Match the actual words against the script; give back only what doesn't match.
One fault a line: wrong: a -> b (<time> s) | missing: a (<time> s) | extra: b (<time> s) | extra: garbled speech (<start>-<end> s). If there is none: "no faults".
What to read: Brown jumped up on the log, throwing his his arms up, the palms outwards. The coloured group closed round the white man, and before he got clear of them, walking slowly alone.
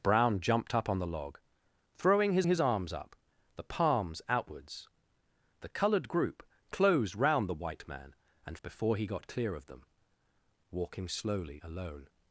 no faults